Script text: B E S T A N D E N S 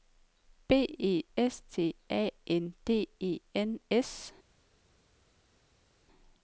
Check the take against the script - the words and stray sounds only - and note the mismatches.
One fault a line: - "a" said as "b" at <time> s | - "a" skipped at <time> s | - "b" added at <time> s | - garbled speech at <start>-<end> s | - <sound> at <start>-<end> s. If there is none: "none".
none